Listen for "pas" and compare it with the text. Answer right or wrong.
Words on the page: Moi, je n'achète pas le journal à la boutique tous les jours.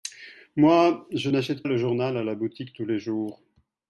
wrong